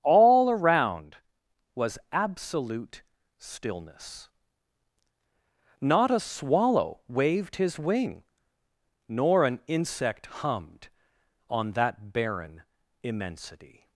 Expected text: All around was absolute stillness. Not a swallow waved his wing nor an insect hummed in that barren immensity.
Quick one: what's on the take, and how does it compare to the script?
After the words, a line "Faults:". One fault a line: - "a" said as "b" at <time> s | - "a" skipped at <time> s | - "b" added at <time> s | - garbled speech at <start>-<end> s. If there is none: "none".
All around was absolute stillness. Not a swallow waved his wing nor an insect hummed on that barren immensity.
Faults:
- "in" said as "on" at 11.5 s